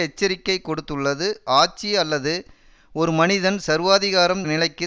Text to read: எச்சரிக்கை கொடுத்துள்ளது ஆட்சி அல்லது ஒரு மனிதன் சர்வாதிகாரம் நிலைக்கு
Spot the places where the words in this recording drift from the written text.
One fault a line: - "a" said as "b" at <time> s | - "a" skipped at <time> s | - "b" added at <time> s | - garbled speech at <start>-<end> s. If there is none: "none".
none